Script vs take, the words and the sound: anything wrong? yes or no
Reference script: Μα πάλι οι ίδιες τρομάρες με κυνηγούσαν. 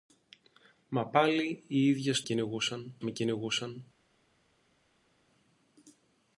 yes